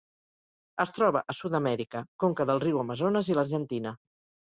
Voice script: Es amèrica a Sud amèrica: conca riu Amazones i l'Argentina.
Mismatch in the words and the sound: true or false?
true